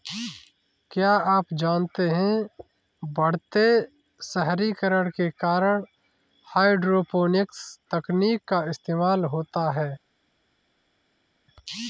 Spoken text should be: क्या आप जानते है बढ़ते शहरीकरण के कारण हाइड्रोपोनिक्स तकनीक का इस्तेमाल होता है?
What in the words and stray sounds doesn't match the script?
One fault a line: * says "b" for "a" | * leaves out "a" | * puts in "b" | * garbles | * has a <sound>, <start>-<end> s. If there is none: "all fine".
all fine